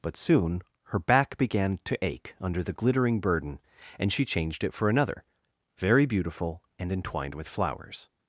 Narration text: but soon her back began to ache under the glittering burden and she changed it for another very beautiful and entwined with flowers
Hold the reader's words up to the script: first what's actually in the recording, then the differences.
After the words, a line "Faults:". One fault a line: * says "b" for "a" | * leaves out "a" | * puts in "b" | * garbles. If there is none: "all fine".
but soon her back began to ache under the glittering burden and she changed it for another very beautiful and entwined with flowers
Faults:
all fine